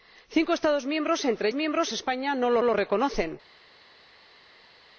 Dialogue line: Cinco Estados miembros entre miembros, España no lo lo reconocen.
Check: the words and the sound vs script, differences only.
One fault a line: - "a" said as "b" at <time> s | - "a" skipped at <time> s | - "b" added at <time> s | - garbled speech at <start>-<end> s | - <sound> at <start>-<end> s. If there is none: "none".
none